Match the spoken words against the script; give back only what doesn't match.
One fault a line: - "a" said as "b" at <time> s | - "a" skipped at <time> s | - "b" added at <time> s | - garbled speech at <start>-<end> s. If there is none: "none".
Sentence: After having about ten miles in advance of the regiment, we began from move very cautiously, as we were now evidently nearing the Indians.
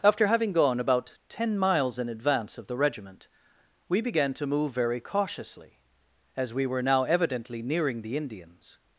- "gone" added at 0.5 s
- "from" said as "to" at 4.3 s